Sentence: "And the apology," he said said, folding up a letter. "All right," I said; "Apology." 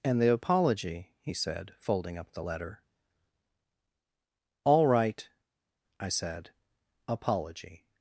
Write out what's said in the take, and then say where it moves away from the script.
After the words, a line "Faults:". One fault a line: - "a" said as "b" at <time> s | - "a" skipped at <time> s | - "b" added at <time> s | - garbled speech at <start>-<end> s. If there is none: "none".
"And the apology," he said, folding up the letter. "All right," I said; "Apology."
Faults:
- "said" skipped at 1.7 s
- "a" said as "the" at 2.3 s